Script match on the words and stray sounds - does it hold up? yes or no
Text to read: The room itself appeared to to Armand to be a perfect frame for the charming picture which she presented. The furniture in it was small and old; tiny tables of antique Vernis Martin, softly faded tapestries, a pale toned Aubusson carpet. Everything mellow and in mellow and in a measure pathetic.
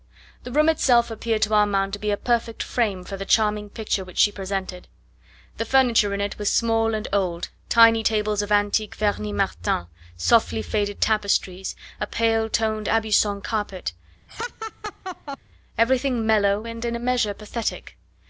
no